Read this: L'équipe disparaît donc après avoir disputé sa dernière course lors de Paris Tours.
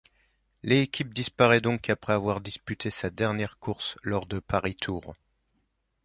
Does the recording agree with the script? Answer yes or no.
yes